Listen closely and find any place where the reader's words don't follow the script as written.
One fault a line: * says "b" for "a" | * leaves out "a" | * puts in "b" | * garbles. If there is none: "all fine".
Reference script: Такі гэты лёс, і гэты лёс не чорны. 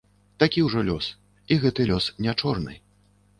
* says "ўжо" for "гэты"